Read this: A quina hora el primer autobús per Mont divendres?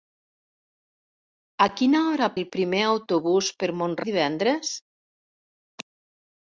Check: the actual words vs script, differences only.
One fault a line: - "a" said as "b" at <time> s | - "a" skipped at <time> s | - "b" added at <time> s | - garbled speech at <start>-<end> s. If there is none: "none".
none